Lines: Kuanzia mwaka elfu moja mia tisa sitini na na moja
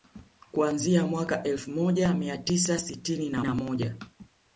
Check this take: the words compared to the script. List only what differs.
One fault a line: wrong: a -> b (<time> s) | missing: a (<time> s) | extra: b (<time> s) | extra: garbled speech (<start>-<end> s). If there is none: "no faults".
no faults